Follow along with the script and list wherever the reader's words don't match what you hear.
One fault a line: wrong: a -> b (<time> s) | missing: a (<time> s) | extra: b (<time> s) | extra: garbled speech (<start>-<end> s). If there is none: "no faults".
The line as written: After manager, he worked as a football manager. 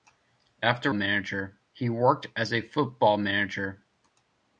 no faults